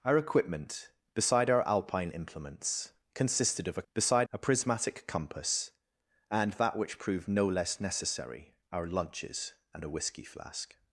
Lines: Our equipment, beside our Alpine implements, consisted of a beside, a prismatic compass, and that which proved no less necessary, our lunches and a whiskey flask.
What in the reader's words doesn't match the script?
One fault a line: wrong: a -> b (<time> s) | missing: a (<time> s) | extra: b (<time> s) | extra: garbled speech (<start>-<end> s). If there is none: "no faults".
no faults